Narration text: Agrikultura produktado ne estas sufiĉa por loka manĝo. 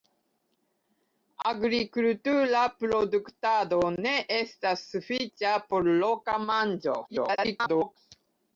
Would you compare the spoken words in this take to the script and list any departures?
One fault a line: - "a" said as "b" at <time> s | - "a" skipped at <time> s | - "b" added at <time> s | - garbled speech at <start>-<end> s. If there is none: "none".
- garbled speech at 7.1-8.0 s